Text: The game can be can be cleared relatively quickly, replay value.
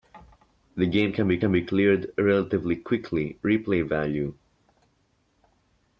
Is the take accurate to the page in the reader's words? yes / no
yes